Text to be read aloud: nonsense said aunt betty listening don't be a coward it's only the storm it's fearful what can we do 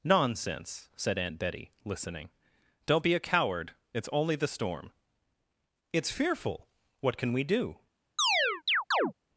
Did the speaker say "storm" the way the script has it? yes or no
yes